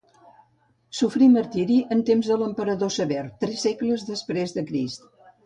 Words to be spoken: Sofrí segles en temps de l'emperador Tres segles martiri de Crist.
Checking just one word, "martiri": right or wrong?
wrong